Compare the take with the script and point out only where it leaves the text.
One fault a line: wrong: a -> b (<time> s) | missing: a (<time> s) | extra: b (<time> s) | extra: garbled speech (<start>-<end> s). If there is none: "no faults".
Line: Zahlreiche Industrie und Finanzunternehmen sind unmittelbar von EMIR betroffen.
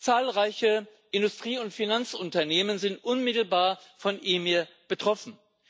no faults